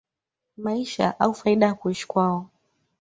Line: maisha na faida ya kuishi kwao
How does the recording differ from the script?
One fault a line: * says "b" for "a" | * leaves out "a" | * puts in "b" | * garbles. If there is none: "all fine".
* says "au" for "na"